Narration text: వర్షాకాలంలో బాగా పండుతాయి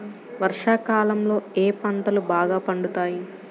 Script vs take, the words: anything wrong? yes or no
yes